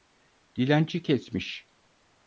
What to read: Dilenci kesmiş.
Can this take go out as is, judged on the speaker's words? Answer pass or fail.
pass